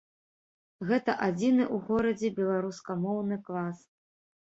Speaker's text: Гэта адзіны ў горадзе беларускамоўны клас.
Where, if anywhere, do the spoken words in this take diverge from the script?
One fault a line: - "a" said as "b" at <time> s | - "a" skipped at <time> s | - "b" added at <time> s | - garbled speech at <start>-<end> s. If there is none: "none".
none